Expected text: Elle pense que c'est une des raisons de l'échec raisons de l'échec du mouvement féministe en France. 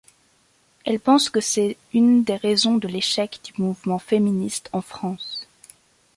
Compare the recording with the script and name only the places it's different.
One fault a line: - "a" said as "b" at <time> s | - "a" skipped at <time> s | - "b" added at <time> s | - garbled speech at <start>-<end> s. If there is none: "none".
- "raisons de l'échec" skipped at 3.4 s